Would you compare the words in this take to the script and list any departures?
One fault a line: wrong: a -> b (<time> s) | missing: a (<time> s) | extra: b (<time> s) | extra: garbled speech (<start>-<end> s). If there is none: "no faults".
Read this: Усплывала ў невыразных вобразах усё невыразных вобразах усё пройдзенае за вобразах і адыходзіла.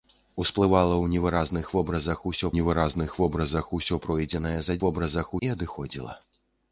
no faults